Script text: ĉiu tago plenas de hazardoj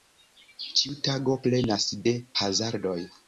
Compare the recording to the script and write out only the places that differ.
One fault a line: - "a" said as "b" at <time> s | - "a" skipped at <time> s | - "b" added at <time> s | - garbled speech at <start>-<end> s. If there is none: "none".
none